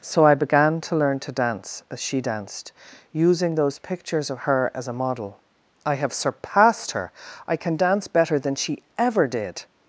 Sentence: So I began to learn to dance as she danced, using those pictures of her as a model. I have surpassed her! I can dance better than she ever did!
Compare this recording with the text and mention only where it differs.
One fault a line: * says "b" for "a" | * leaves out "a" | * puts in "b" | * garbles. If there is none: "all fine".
all fine